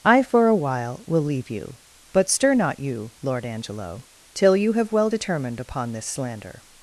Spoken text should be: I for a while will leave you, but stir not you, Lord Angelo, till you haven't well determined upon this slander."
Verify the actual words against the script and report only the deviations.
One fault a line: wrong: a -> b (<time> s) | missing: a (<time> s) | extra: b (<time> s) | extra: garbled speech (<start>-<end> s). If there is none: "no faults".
wrong: haven't -> have (4.7 s)